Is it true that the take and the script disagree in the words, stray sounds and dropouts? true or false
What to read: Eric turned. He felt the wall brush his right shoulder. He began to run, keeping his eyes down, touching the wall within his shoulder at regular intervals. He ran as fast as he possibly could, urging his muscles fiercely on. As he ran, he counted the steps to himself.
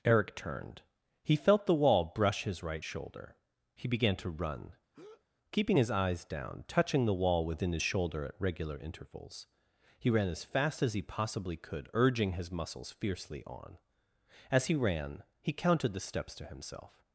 true